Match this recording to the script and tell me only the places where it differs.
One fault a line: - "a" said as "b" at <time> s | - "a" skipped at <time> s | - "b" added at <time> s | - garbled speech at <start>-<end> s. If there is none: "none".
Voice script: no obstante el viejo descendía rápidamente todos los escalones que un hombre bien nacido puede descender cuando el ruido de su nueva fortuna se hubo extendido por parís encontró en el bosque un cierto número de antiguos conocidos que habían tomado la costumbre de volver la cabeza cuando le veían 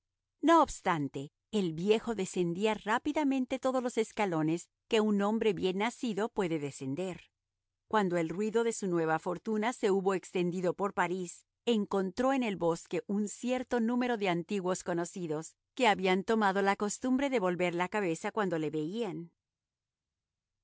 none